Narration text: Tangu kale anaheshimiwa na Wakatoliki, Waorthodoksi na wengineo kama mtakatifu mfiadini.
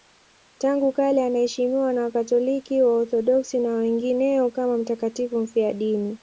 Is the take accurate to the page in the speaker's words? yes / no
yes